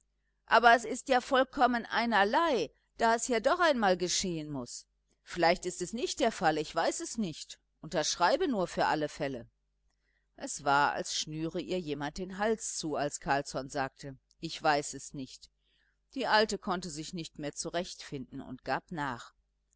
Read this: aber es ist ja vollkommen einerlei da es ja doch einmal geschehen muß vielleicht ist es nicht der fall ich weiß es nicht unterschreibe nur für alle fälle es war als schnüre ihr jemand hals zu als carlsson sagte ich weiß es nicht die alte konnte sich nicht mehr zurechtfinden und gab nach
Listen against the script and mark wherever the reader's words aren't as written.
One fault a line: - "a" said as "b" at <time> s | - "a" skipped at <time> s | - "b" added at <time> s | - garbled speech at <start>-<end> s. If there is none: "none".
- "den" added at 12.2 s